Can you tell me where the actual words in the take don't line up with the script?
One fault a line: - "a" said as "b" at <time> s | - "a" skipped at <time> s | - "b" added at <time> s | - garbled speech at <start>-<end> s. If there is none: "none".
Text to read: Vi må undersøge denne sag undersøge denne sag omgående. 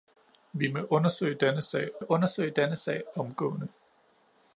none